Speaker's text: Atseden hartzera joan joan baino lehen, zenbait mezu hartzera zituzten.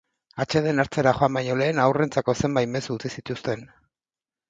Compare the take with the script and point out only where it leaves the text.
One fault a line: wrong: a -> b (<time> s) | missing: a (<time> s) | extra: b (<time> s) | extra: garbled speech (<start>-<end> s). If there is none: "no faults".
missing: joan (1.4 s)
extra: haurrentzako (1.8 s)
wrong: hartzera -> utzi (3.0 s)